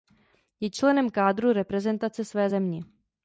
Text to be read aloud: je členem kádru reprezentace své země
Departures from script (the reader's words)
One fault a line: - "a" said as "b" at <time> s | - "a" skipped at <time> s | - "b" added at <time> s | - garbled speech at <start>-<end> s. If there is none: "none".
none